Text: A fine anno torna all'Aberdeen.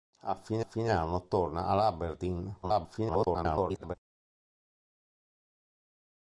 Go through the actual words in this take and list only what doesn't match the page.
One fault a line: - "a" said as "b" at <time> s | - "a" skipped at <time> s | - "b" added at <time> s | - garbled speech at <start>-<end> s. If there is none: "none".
- "fine" added at 0.6 s
- garbled speech at 2.6-4.0 s